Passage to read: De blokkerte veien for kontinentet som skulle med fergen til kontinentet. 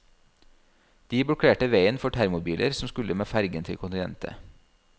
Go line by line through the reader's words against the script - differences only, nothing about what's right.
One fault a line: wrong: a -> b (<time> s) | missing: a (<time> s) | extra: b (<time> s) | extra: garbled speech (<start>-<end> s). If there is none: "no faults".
wrong: kontinentet -> termobiler (2.1 s)